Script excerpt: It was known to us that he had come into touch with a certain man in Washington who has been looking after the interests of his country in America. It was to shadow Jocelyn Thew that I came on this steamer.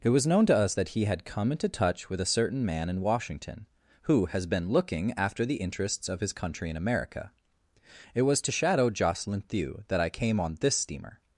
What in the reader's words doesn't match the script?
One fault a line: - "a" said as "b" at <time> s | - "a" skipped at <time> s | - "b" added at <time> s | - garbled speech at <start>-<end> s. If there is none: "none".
none